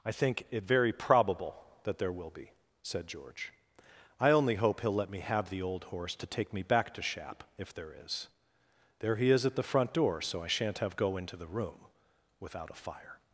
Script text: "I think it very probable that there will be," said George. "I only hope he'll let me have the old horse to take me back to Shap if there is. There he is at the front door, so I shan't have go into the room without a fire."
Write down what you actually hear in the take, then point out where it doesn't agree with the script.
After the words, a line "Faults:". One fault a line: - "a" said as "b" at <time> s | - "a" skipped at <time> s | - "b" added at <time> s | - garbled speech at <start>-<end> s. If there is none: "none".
"I think it very probable that there will be," said George. "I only hope he'll let me have the old horse to take me back to Shap if there is. There he is at the front door, so I shan't have go into the room without a fire."
Faults:
none